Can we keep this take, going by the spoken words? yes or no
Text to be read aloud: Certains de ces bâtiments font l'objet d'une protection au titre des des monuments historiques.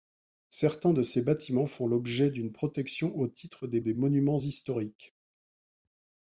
yes